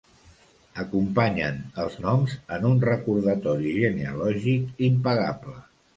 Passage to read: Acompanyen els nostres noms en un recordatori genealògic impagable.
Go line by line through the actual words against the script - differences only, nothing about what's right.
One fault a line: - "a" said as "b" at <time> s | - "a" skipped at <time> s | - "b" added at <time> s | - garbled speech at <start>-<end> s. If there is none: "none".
- "nostres" skipped at 2.0 s